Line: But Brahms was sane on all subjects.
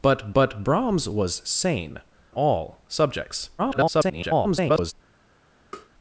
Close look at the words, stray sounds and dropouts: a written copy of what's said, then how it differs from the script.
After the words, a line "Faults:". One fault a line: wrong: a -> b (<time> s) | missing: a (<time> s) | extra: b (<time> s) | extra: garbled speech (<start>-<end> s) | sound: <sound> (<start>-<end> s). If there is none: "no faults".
But but Brahms was sane all subjects. [garbled]
Faults:
extra: but (0.3 s)
missing: on (2.0 s)
extra: garbled speech (3.6-4.9 s)
sound: tap (5.7-5.9 s)